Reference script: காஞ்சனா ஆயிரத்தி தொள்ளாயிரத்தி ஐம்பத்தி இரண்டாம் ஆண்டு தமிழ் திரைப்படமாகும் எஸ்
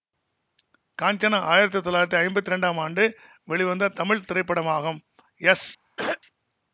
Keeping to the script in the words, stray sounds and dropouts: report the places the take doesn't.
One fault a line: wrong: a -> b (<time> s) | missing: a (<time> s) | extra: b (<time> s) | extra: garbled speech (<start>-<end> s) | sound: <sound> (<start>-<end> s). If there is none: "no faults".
extra: வெளிவந்த (3.5 s)
sound: throat clearing (6.0-6.2 s)